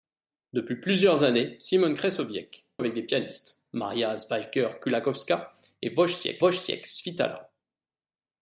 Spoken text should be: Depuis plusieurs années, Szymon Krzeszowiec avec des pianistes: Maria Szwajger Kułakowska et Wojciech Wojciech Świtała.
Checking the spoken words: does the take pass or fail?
pass